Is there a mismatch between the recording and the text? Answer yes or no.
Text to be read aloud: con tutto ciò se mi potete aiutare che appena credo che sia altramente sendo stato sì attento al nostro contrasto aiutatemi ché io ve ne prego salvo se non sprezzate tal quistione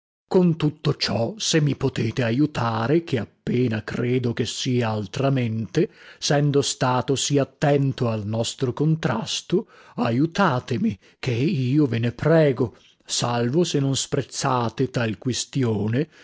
no